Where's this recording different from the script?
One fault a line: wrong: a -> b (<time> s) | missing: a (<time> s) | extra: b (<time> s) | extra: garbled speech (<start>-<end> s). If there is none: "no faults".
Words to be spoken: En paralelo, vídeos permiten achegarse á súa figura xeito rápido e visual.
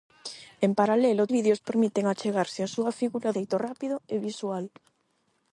no faults